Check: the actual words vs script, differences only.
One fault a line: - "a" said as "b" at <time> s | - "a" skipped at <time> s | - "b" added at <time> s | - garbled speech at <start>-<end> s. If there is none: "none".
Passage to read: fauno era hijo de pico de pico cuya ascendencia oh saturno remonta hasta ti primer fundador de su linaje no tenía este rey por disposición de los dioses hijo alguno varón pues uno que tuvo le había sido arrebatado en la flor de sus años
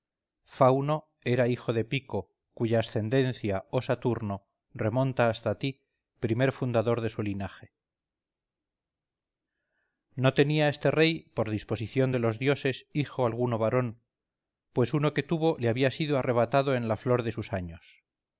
- "de pico" skipped at 2.3 s